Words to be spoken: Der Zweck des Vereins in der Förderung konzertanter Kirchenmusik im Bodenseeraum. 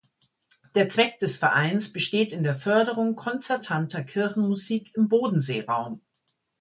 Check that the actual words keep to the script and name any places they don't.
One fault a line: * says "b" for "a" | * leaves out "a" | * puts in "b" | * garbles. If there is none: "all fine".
* puts in "besteht"